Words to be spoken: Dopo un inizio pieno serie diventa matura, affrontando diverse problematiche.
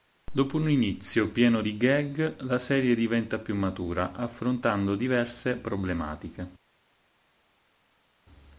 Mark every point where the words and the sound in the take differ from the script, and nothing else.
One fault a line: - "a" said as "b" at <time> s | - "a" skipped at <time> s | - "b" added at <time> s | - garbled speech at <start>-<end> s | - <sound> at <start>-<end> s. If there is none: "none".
- "di gag la" added at 1.6 s
- "più" added at 3.4 s